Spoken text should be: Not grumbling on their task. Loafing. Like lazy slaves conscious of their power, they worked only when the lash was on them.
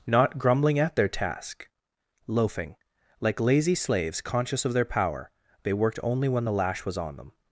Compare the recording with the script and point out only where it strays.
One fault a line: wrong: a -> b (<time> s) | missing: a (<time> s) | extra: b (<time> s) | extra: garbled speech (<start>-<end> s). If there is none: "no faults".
wrong: on -> at (0.8 s)